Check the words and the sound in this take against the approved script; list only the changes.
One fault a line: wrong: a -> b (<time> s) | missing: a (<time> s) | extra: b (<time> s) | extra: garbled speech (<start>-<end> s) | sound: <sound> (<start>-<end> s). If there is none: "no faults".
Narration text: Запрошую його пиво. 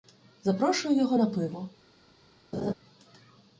extra: на (1.1 s)
sound: laugh (2.5-2.7 s)